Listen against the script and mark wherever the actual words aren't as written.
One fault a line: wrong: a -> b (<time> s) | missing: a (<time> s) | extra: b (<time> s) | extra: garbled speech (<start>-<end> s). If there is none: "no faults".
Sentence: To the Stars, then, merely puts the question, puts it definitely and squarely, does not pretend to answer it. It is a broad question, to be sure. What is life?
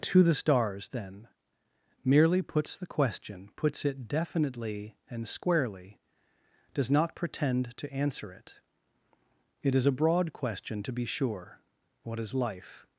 no faults